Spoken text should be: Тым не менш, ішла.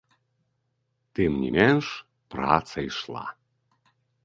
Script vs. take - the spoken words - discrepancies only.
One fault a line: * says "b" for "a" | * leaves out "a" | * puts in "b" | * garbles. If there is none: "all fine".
* puts in "праца"